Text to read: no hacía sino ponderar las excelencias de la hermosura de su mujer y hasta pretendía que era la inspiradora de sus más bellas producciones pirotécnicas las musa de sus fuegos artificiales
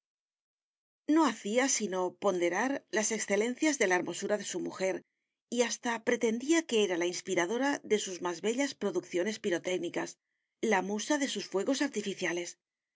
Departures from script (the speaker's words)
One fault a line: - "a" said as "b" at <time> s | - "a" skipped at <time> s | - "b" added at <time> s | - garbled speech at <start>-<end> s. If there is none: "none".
- "las" said as "la" at 10.6 s